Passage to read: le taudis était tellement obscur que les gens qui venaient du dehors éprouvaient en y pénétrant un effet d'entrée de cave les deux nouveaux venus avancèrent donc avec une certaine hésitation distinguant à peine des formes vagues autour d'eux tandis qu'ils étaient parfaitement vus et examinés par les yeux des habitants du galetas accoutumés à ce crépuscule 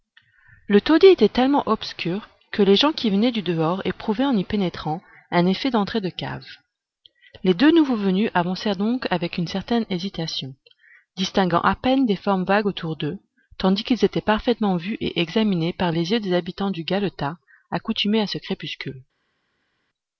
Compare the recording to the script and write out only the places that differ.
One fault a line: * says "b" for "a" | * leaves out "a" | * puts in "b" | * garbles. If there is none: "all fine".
all fine